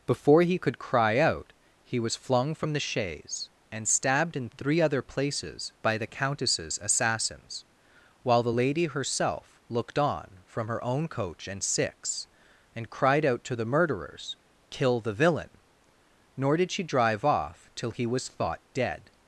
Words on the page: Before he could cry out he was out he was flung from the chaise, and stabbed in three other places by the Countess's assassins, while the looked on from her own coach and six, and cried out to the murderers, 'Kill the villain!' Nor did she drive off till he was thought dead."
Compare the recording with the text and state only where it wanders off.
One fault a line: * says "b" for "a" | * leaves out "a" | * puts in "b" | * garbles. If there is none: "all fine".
* leaves out "out he was"
* puts in "lady herself"